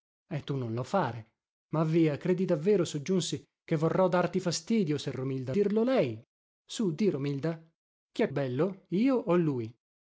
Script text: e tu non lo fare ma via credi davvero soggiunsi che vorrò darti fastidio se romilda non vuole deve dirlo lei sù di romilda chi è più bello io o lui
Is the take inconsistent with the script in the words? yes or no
yes